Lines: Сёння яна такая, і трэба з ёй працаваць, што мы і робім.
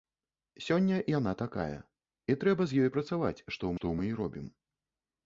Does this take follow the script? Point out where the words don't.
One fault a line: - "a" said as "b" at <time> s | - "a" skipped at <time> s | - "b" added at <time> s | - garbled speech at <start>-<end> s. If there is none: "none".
- "што" added at 3.8 s